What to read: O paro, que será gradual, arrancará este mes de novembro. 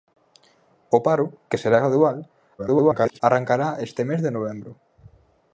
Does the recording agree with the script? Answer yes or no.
no